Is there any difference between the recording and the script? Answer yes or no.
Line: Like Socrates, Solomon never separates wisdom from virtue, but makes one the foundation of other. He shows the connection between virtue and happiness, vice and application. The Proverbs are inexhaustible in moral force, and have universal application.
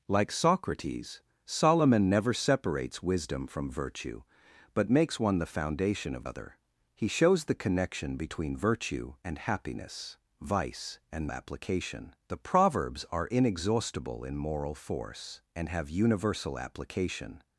no